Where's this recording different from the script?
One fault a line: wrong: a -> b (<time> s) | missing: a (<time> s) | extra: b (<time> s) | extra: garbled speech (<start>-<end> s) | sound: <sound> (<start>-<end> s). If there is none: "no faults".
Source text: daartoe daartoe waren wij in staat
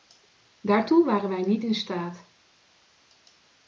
missing: daartoe (1.1 s)
extra: niet (1.4 s)